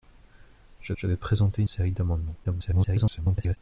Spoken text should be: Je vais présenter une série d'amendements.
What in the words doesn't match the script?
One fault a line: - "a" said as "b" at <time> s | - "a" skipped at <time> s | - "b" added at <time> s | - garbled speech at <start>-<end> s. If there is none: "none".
- "je" added at 0.9 s
- "une" skipped at 1.6 s
- garbled speech at 2.4-3.6 s